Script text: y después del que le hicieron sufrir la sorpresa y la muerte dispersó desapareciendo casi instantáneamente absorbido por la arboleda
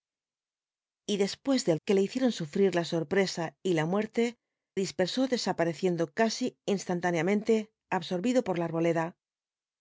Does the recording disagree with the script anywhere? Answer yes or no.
no